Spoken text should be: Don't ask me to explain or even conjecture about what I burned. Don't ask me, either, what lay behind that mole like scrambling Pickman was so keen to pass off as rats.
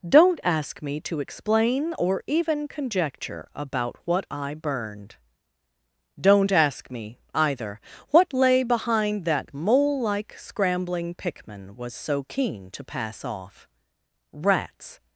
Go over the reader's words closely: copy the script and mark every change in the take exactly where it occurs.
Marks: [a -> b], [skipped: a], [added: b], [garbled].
Don't ask me to explain or even conjecture about what I burned. Don't ask me, either, what lay behind that mole like scrambling Pickman was so keen to pass off [skipped: as] rats.